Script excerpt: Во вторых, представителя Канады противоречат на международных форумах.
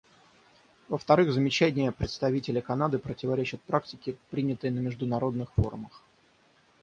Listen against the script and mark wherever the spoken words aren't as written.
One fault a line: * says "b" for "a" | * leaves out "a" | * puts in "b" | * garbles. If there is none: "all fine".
* puts in "замечания"
* puts in "практике принятой"